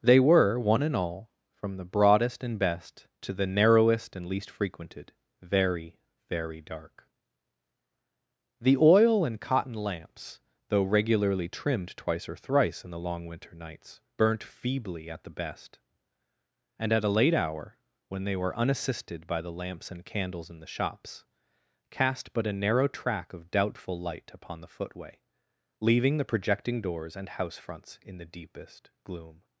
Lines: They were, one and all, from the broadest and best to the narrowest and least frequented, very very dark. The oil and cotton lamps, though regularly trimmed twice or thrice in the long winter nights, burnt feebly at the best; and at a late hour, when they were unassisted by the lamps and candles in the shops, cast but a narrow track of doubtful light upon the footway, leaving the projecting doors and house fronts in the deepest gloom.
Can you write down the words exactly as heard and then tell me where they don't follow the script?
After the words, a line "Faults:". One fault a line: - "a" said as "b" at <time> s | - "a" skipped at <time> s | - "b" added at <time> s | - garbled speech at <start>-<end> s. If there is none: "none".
They were, one and all, from the broadest and best to the narrowest and least frequented, very very dark. The oil and cotton lamps, though regularly trimmed twice or thrice in the long winter nights, burnt feebly at the best; and at a late hour, when they were unassisted by the lamps and candles in the shops, cast but a narrow track of doubtful light upon the footway, leaving the projecting doors and house fronts in the deepest gloom.
Faults:
none